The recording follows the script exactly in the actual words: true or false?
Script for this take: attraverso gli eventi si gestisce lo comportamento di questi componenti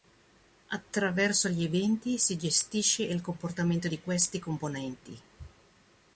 false